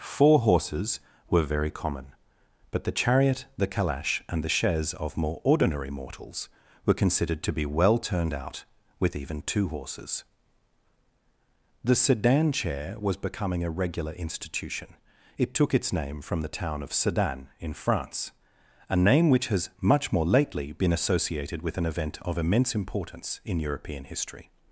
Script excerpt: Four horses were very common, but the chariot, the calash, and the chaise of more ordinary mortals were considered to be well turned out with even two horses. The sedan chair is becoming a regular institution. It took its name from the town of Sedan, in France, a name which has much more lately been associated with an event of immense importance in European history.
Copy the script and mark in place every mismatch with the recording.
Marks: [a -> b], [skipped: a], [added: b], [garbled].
Four horses were very common, but the chariot, the calash, and the chaise of more ordinary mortals were considered to be well turned out with even two horses. The sedan chair [is -> was] becoming a regular institution. It took its name from the town of Sedan, in France, a name which has much more lately been associated with an event of immense importance in European history.